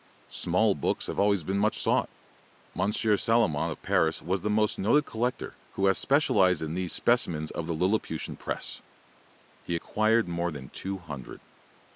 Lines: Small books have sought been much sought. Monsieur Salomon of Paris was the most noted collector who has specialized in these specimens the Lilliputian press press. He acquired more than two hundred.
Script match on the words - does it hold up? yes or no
no